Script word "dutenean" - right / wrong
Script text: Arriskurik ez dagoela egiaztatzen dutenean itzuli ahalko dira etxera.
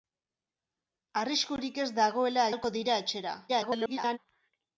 wrong